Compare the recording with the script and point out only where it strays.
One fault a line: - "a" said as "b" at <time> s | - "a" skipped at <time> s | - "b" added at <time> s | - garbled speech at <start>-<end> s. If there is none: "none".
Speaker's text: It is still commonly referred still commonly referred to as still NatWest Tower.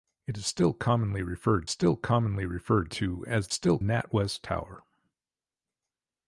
none